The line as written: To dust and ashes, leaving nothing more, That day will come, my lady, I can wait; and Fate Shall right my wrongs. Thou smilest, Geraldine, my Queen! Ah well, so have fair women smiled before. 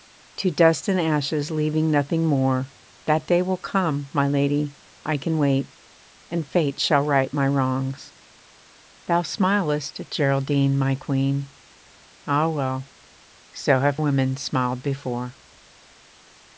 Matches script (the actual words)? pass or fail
fail